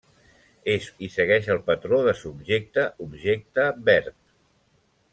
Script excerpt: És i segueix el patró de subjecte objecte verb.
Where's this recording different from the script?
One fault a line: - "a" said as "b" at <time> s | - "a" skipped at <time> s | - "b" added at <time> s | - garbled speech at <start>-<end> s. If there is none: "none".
none